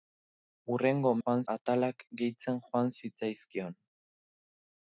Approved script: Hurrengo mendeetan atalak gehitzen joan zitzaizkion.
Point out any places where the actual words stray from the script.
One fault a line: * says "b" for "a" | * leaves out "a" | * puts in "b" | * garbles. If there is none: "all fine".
* says "joan" for "mendeetan"